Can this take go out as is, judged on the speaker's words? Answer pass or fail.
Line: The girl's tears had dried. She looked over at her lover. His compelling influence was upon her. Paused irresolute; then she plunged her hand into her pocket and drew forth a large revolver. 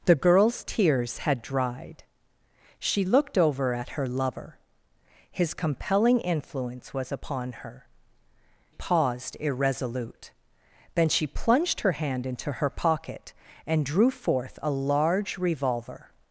pass